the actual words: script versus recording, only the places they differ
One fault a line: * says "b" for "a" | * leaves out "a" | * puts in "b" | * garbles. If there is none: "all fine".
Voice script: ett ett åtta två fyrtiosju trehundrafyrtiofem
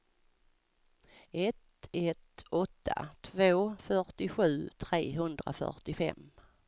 all fine